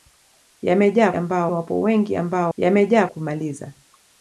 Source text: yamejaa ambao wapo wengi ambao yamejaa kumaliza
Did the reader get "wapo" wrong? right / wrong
right